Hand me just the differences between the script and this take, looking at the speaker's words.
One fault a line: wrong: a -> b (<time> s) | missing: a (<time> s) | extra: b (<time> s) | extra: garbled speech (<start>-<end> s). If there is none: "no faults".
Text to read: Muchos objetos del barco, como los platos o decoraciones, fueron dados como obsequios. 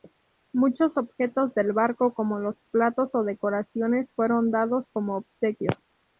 no faults